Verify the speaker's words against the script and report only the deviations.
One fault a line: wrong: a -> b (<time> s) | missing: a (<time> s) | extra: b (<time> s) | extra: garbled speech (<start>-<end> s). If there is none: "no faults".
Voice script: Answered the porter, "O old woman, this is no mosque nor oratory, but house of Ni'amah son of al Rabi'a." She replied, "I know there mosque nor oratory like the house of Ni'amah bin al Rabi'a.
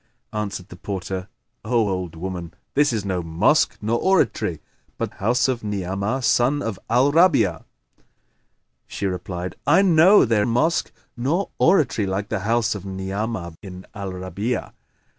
no faults